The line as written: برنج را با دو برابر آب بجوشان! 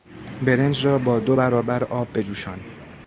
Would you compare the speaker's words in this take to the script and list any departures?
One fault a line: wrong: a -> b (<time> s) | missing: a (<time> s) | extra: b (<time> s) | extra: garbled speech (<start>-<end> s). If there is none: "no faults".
no faults